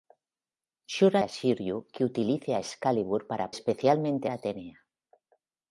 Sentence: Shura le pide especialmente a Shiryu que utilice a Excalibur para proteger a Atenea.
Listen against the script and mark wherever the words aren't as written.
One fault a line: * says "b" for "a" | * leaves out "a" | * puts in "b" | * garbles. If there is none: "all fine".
* leaves out "le pide especialmente"
* says "especialmente" for "proteger"